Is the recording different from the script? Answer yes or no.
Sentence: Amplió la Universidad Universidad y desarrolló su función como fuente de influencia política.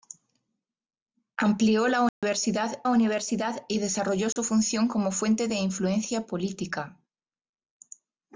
no